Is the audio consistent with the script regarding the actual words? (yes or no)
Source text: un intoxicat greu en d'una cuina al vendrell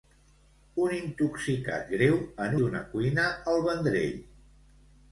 yes